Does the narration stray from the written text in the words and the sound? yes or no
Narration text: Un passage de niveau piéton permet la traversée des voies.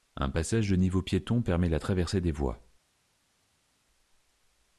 no